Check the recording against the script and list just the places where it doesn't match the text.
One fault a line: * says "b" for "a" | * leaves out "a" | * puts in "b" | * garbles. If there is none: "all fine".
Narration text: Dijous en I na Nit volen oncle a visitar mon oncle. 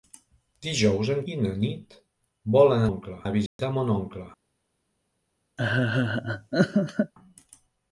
all fine